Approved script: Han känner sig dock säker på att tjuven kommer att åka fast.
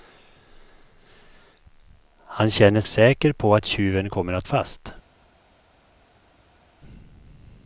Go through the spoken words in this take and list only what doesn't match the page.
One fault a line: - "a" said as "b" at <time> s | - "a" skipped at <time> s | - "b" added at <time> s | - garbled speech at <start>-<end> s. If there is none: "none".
- "sig dock" skipped at 2.8 s
- "åka" skipped at 4.5 s